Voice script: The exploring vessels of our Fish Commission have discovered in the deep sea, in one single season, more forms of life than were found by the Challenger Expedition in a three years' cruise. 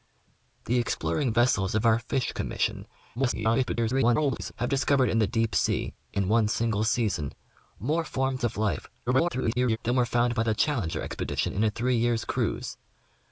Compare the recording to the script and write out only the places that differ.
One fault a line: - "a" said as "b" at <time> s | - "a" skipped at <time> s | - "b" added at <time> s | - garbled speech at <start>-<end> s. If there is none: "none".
- garbled speech at 3.1-4.5 s
- garbled speech at 9.1-9.8 s